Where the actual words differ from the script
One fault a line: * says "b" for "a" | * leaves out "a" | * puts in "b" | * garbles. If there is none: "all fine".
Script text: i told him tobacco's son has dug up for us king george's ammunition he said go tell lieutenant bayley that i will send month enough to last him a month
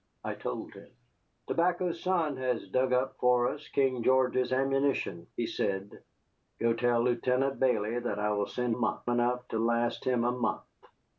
all fine